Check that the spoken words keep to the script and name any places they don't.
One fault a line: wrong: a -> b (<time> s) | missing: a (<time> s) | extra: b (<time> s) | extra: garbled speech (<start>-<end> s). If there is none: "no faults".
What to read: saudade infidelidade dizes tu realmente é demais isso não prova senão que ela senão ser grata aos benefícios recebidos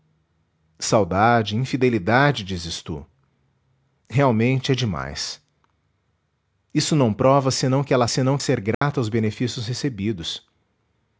no faults